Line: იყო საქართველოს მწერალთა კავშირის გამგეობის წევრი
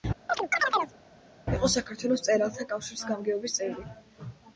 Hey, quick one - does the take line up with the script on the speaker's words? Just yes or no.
yes